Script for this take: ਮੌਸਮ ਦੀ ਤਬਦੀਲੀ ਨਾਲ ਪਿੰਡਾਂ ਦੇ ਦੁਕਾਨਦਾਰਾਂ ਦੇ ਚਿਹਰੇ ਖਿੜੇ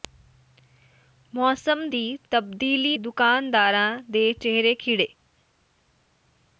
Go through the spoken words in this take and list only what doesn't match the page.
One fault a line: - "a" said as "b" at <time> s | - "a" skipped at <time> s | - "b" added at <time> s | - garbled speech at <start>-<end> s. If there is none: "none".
- "ਨਾਲ ਪਿੰਡਾਂ ਦੇ" skipped at 3.0 s